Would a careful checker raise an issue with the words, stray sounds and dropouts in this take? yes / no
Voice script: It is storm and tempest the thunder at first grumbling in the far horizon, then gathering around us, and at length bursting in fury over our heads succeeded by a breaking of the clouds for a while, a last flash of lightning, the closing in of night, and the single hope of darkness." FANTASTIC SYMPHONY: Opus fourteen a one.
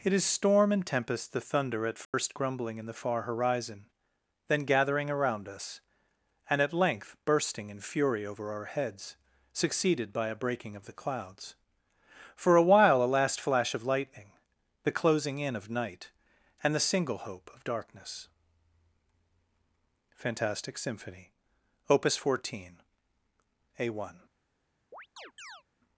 yes